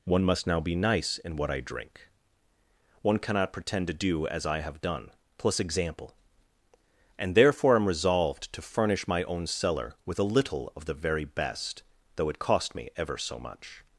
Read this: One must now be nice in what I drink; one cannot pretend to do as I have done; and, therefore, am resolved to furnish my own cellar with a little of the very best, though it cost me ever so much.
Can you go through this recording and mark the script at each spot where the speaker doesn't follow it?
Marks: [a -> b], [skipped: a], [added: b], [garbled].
One must now be nice in what I drink; one cannot pretend to do as I have done; [added: plus example] and, therefore, am resolved to furnish my own cellar with a little of the very best, though it cost me ever so much.